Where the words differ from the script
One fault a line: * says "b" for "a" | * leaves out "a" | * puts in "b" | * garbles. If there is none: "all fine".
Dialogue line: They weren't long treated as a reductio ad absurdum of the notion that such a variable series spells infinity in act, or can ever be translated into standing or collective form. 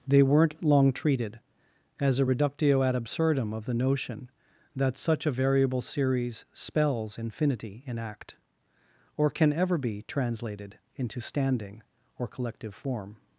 all fine